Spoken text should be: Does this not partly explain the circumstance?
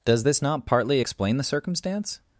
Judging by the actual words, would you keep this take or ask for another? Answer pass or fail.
pass